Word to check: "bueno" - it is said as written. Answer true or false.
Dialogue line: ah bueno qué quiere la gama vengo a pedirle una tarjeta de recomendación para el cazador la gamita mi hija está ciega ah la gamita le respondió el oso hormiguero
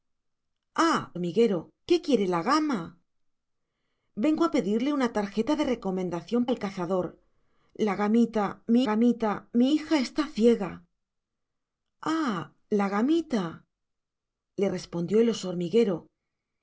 false